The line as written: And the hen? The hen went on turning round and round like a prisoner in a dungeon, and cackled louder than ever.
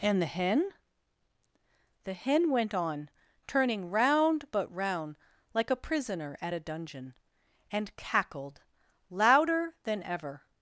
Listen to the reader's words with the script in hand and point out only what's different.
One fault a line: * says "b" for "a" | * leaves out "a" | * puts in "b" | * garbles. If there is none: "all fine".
* says "but" for "and"
* says "at" for "in"